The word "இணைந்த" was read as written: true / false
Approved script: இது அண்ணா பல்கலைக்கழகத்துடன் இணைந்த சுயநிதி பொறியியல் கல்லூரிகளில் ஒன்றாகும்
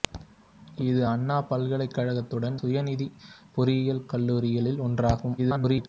false